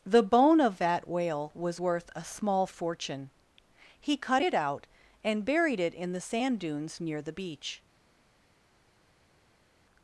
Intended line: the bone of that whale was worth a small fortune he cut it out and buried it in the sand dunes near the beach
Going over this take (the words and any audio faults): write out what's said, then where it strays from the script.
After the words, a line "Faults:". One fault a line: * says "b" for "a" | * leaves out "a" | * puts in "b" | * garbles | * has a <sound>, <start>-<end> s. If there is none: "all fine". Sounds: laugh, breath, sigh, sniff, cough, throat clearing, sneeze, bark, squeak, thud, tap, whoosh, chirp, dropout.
the bone of that whale was worth a small fortune he cut it out and buried it in the sand dunes near the beach
Faults:
all fine